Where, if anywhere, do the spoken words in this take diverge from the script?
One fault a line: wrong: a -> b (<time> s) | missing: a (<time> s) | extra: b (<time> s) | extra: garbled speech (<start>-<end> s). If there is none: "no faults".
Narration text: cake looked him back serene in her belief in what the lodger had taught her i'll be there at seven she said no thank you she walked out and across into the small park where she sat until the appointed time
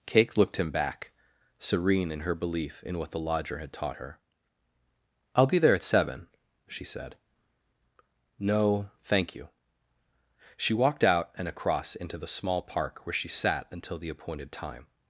no faults